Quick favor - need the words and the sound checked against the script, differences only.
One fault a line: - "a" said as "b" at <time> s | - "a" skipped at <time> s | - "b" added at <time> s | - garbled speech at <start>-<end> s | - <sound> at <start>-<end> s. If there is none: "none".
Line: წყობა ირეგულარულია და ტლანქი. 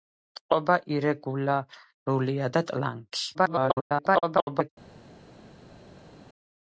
- garbled speech at 3.3-4.7 s